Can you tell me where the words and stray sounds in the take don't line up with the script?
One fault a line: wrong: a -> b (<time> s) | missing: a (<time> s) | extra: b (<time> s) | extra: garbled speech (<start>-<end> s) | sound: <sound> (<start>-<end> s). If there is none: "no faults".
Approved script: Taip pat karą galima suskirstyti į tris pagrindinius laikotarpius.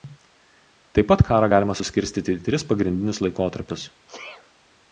sound: sneeze (4.1-4.5 s)